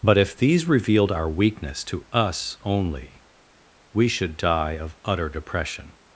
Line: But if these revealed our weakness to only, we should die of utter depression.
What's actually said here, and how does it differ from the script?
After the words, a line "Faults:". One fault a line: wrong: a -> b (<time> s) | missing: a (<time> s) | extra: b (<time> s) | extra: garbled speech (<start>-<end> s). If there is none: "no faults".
But if these revealed our weakness to us only, we should die of utter depression.
Faults:
extra: us (2.1 s)